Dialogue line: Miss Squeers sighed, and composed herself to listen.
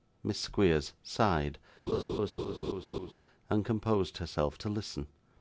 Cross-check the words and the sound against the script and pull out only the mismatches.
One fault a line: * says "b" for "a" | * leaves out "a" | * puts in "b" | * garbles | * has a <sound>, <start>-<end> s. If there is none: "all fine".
* has a laugh, 1.9-3.1 s